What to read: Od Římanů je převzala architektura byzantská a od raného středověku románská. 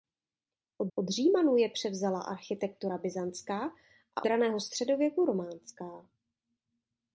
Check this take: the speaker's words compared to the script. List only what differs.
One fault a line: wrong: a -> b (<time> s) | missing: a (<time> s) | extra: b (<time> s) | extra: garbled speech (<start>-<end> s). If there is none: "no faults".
extra: od (0.9 s)
missing: od (4.3 s)